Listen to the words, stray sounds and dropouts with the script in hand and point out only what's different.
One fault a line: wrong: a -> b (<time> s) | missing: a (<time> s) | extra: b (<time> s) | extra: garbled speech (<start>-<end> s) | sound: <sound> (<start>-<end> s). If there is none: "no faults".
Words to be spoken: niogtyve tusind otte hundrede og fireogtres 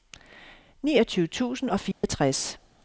missing: otte hundrede (1.7 s)
sound: dropout (1.9-2.0 s)